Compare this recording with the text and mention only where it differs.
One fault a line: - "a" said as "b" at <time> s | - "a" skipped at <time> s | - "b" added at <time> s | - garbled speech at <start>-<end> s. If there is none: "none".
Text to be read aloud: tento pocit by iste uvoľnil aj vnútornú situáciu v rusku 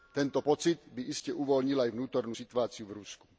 none